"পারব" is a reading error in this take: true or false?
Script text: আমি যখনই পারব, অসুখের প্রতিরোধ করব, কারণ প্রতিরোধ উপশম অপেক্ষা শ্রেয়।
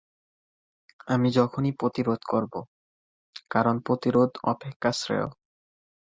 true